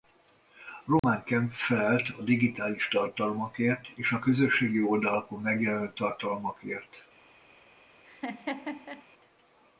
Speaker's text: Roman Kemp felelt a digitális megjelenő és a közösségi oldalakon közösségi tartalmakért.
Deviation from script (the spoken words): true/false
true